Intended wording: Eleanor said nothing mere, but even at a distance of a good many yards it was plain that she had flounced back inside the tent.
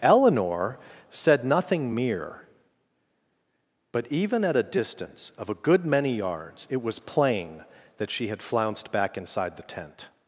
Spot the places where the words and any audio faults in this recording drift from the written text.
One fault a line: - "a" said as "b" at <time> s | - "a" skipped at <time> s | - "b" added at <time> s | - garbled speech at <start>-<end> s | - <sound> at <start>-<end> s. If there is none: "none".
none